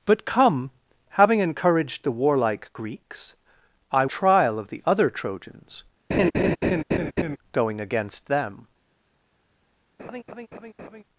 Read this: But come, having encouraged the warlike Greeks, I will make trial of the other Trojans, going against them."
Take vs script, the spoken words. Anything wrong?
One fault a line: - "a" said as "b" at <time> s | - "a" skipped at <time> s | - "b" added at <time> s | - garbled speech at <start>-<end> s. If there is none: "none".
- "will make" skipped at 4.0 s